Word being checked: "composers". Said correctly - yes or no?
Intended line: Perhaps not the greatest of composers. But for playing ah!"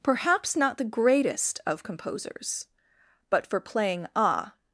yes